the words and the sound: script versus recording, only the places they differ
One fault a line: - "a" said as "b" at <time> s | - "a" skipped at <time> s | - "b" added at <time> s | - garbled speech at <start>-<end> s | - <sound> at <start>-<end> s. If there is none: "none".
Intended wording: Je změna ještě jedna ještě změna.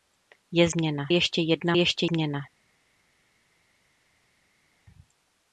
none